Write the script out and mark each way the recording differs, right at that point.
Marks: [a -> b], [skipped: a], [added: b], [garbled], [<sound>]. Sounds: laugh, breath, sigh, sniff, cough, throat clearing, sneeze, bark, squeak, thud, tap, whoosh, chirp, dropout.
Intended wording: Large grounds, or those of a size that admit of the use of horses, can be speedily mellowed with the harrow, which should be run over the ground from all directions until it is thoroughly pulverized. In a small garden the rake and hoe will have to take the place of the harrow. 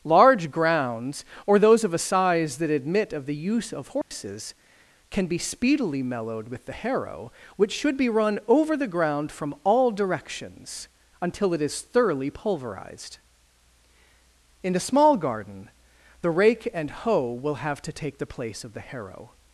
Large grounds, or those of a size that admit of the use of horses, [dropout] can be speedily mellowed with the harrow, which should be run over the ground from all directions until it is thoroughly pulverized. In a small garden the rake and hoe will have to take the place of the harrow.